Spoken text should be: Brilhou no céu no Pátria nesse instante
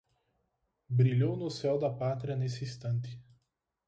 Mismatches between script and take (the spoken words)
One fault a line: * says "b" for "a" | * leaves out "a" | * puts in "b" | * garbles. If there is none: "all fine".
* says "da" for "no"